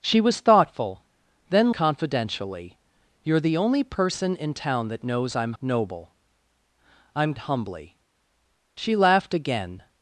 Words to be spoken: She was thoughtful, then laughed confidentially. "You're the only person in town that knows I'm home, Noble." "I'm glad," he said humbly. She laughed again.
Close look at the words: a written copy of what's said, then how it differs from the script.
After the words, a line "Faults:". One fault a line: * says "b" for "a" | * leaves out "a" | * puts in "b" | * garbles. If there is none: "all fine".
She was thoughtful, then confidentially. "You're the only person in town that knows I'm Noble." "I'm humbly. She laughed again.
Faults:
* leaves out "laughed"
* leaves out "home"
* leaves out "glad he said"